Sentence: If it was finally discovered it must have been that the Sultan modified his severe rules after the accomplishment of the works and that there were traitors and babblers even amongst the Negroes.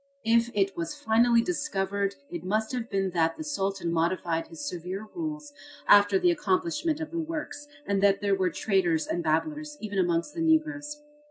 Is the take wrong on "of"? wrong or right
right